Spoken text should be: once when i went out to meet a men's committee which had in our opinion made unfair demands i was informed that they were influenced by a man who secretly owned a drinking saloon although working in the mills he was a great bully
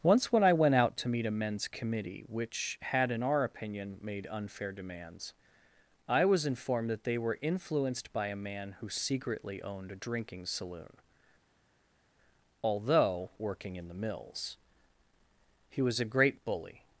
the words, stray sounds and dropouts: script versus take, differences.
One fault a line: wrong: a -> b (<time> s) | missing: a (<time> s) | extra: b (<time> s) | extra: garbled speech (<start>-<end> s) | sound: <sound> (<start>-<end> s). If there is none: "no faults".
no faults